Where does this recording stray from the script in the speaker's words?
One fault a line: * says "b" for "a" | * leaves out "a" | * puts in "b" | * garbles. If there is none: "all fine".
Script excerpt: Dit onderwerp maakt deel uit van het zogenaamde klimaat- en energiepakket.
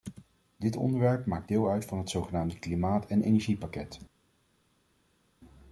all fine